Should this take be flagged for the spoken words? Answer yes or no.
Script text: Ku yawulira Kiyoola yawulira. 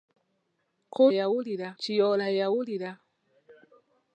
no